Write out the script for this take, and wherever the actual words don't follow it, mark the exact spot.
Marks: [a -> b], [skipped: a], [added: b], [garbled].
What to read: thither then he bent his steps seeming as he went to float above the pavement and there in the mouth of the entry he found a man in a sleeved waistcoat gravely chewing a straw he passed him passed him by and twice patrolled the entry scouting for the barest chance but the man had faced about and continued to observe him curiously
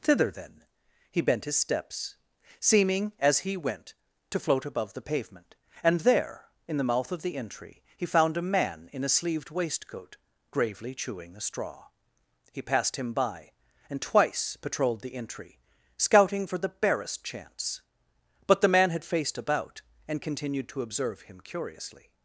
thither then he bent his steps seeming as he went to float above the pavement and there in the mouth of the entry he found a man in a sleeved waistcoat gravely chewing a straw he passed him [skipped: passed him] by and twice patrolled the entry scouting for the barest chance but the man had faced about and continued to observe him curiously